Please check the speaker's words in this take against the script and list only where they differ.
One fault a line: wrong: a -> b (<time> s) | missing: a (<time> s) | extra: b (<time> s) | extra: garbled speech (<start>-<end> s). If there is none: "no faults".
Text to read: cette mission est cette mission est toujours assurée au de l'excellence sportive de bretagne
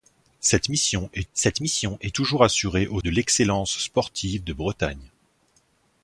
no faults